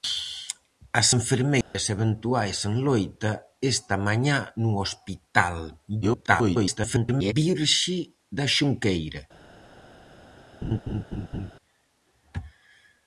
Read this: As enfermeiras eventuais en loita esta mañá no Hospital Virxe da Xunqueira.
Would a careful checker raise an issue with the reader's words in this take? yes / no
yes